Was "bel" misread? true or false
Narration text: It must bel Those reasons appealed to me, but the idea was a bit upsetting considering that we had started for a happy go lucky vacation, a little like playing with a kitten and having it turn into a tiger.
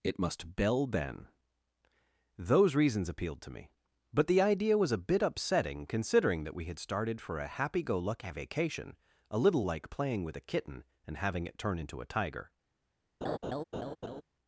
true